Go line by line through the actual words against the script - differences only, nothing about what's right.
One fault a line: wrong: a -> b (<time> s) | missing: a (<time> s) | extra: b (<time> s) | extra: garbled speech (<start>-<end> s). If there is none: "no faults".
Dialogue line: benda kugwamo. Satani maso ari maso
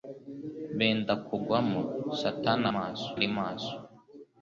no faults